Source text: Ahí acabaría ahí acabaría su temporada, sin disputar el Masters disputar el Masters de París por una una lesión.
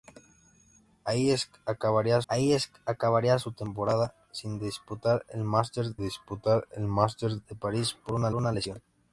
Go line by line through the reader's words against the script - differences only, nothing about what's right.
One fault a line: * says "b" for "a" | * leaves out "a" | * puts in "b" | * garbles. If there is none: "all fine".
all fine